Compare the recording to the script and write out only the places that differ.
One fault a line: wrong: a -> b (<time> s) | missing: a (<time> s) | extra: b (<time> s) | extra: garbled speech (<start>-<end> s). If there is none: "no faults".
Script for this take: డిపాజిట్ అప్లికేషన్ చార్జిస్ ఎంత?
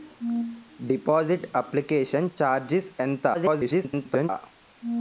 extra: garbled speech (3.3-4.3 s)